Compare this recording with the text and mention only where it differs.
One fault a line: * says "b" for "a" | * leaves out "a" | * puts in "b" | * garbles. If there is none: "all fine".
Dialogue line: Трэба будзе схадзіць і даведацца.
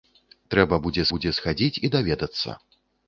* puts in "будзе"